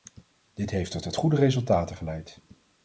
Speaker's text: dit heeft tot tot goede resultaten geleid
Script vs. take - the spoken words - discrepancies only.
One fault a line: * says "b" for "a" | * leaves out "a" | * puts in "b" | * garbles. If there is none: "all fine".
all fine